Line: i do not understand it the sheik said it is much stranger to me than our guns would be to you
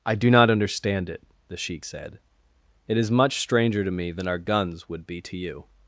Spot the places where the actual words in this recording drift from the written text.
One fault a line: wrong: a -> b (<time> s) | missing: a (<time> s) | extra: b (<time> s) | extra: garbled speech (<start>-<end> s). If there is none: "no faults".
no faults